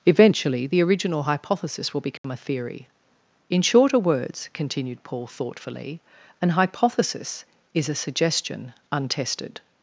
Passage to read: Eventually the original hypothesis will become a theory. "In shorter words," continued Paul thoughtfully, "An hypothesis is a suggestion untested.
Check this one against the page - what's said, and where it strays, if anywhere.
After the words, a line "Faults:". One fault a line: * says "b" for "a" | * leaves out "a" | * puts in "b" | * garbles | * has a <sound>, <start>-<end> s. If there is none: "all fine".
Eventually the original hypothesis will become a theory. "In shorter words," continued Paul thoughtfully, "An hypothesis is a suggestion untested.
Faults:
* has a dropout, 2.2-2.2 s